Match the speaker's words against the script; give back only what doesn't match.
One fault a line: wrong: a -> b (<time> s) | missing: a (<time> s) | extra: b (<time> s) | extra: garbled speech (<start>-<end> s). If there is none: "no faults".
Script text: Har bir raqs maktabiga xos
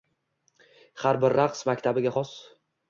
no faults